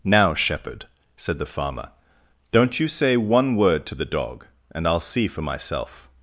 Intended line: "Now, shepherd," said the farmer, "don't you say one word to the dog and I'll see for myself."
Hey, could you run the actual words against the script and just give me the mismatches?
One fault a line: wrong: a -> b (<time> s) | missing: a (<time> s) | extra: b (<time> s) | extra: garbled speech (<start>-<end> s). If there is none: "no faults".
no faults